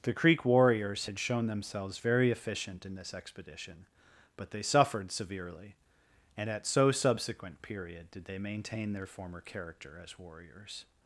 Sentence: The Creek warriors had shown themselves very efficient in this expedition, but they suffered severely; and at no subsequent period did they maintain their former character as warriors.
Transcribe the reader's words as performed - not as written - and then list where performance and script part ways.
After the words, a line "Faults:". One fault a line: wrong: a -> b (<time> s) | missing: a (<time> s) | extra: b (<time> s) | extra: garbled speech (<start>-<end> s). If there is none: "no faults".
The Creek warriors had shown themselves very efficient in this expedition, but they suffered severely; and at so subsequent period did they maintain their former character as warriors.
Faults:
wrong: no -> so (6.7 s)